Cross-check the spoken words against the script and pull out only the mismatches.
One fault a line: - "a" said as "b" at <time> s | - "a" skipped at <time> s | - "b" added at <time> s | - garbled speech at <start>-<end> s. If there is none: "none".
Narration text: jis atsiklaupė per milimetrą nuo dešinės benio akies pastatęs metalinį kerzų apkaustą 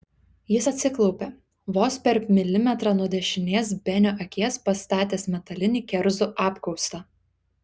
- "vos" added at 1.8 s